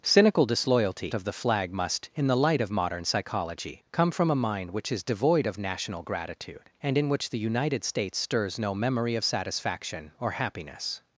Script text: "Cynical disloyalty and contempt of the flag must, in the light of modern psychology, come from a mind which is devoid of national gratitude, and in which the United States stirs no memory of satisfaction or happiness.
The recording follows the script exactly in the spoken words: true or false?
false